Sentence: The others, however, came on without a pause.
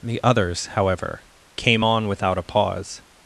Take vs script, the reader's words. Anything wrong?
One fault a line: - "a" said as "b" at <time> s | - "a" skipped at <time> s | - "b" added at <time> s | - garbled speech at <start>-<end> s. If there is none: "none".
none